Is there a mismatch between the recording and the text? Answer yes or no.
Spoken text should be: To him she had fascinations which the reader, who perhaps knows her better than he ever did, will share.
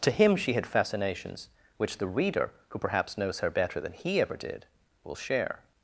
no